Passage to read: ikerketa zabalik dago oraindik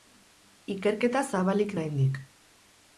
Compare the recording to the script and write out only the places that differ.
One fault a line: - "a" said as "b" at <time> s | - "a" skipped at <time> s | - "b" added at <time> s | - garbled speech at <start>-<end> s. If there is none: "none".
- "dago" skipped at 1.8 s